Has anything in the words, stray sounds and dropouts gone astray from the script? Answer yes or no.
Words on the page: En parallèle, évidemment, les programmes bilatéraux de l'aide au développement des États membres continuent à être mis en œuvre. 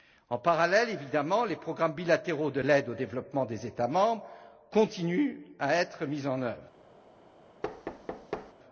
yes